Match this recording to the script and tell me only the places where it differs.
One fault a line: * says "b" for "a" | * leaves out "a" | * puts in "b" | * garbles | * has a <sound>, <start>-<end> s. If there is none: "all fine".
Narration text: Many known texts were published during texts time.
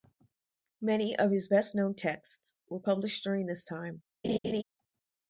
* puts in "of his best"
* says "this" for "texts"
* has a laugh, 4.2-4.6 s